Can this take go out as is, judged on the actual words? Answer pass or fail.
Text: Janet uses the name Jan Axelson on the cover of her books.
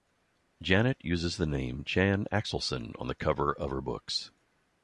pass